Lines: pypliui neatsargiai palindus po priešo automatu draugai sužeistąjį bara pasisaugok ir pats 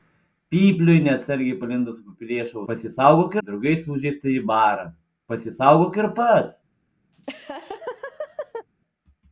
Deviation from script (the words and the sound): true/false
true